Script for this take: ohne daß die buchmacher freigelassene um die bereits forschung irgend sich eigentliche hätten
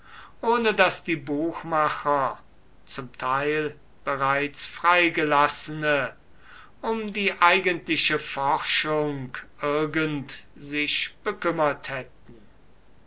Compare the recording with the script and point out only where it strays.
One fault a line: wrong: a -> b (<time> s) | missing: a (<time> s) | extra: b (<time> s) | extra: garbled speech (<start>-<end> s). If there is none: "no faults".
extra: zum teil bereits (2.9 s)
wrong: bereits -> eigentliche (7.4 s)
wrong: eigentliche -> bekümmert (11.2 s)